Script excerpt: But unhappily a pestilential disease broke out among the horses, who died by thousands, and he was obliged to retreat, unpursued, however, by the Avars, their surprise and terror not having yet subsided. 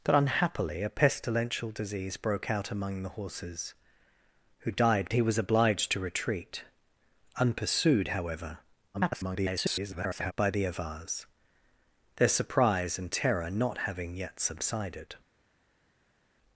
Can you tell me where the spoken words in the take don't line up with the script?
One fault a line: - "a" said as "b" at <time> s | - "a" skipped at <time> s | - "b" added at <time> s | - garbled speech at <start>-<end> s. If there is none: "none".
- "by thousands and" skipped at 5.1 s
- garbled speech at 8.9-10.3 s